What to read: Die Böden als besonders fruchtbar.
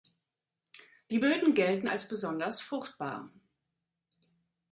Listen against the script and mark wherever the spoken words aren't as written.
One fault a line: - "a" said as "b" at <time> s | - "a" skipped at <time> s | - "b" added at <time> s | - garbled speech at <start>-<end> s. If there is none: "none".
- "gelten" added at 1.5 s